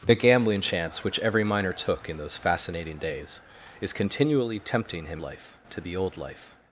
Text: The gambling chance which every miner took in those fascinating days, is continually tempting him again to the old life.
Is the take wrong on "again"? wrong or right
wrong